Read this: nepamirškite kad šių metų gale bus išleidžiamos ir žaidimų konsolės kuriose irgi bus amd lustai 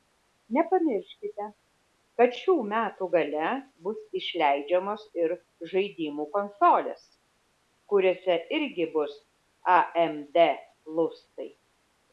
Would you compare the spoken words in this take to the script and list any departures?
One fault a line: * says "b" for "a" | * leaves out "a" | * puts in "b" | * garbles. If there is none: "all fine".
all fine